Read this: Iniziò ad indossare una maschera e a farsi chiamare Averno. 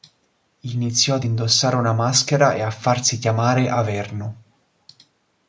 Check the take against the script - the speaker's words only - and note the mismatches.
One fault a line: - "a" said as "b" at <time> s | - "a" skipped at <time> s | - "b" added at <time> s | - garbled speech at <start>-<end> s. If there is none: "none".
none